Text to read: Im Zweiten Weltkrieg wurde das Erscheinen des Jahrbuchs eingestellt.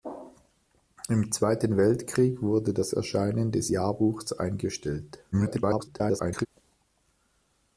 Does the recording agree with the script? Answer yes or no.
no